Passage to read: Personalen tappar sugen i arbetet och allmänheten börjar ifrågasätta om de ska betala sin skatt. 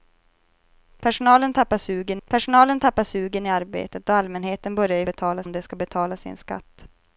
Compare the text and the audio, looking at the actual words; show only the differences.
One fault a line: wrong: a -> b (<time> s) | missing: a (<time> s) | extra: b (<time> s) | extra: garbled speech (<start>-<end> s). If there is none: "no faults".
extra: personalen tappar sugen (2.2 s)
wrong: ifrågasätta -> betala (5.0 s)